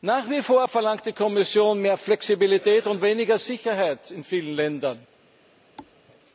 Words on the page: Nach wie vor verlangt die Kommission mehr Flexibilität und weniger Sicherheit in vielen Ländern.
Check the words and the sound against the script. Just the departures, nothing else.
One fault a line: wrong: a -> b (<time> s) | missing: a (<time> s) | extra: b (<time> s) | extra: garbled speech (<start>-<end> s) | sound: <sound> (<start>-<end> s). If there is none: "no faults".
sound: thud (5.8-6.0 s)